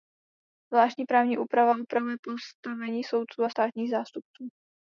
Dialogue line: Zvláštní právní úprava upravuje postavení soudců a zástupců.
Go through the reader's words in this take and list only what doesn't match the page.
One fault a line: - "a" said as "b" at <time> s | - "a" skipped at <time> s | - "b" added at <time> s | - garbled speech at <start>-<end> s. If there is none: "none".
- "státních" added at 3.5 s